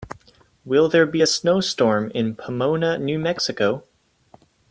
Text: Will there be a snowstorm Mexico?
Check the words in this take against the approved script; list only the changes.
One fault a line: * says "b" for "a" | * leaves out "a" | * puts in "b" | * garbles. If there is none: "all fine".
* puts in "in Pomona New"